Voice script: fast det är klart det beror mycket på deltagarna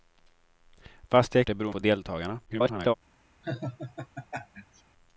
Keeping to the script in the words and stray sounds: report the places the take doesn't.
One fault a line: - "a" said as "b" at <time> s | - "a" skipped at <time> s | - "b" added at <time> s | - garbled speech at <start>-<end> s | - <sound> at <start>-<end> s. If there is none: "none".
- "klart" skipped at 1.4 s
- "mycket" skipped at 1.7 s
- garbled speech at 2.5-2.9 s
- laugh at 3.4-4.8 s